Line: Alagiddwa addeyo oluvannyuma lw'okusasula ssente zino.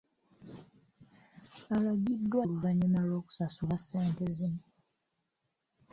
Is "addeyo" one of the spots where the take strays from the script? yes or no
yes